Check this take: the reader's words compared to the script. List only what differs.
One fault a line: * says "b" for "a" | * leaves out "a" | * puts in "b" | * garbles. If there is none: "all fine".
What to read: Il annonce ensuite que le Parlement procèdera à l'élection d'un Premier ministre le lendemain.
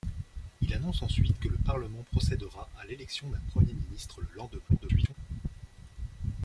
* garbles